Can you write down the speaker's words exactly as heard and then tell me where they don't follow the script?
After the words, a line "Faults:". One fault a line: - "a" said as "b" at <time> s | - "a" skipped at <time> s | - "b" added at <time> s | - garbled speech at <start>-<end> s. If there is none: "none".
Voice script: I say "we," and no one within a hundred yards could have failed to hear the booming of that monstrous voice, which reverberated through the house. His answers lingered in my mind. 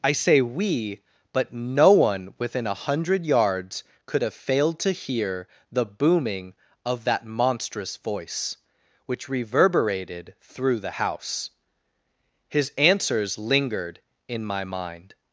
I say "we," but no one within a hundred yards could have failed to hear the booming of that monstrous voice, which reverberated through the house. His answers lingered in my mind.
Faults:
- "and" said as "but" at 1.3 s